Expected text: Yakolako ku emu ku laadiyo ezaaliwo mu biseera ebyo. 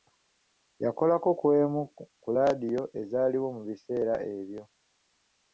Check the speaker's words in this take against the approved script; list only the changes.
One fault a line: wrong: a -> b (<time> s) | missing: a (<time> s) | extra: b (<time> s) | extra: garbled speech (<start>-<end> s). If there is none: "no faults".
no faults